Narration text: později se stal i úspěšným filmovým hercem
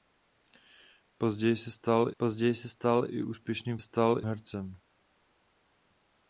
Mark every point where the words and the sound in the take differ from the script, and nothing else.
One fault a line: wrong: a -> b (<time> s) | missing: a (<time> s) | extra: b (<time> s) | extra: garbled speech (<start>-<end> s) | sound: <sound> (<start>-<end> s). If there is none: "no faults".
extra: později se stal (2.2 s)
wrong: filmovým -> stal (3.8 s)